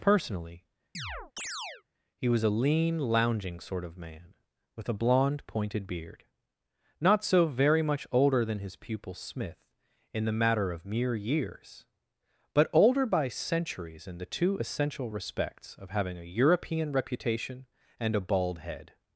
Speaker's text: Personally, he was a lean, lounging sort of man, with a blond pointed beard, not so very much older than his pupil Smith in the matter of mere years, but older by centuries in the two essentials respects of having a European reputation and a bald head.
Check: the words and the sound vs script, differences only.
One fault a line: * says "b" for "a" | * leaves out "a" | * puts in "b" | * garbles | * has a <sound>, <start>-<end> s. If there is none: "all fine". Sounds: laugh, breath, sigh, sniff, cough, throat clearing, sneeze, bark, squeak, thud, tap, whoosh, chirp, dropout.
* has a chirp, 0.9-1.8 s
* says "essential" for "essentials"